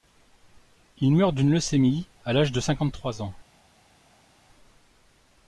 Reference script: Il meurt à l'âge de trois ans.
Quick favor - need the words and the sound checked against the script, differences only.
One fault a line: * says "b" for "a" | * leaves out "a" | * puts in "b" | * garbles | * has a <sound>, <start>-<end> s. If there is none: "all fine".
* puts in "d'une leucémie"
* puts in "cinquante"